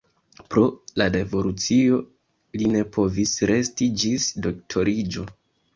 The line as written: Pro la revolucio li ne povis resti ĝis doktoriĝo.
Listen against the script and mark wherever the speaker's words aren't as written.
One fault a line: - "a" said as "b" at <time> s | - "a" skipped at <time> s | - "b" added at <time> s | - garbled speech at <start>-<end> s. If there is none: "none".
none